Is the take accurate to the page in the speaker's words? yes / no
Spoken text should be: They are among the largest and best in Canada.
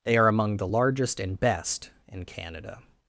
yes